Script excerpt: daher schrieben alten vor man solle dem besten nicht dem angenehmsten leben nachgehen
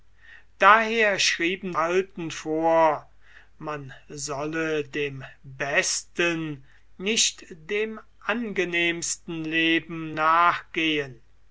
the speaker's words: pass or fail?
pass